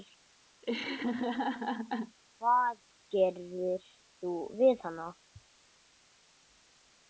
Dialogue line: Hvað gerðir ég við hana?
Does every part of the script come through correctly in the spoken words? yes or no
no